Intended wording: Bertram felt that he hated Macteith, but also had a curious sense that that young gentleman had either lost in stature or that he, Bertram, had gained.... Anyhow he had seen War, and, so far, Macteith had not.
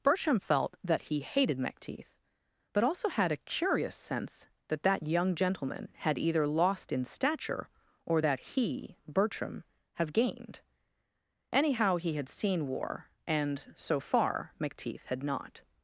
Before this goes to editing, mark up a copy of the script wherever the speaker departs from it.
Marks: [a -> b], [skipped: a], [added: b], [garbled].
Bertram felt that he hated Macteith, but also had a curious sense that that young gentleman had either lost in stature or that he, Bertram, [had -> have] gained.... Anyhow he had seen War, and, so far, Macteith had not.